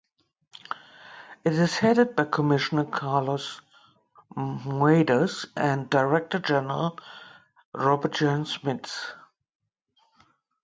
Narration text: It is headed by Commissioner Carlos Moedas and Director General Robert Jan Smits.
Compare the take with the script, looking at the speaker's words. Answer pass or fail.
pass